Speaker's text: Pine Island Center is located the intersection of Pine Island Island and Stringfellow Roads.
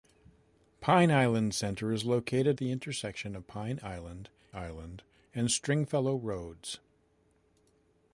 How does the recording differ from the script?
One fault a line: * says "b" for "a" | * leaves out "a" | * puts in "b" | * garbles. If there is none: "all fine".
all fine